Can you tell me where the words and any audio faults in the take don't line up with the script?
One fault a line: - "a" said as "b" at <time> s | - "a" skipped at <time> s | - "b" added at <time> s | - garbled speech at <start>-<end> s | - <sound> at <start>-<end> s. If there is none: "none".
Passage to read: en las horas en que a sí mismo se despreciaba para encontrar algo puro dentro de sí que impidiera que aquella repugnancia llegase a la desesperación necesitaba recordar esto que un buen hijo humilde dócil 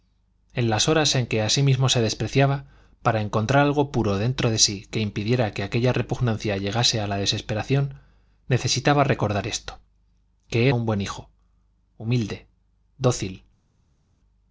none